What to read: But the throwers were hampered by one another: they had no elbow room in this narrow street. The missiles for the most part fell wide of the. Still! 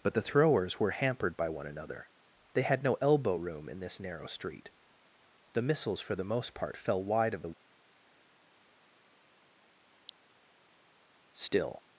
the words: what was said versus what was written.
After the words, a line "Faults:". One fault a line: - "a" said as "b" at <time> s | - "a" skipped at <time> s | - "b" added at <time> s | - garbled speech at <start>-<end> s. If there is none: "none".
But the throwers were hampered by one another: they had no elbow room in this narrow street. The missiles for the most part fell wide of the. Still!
Faults:
none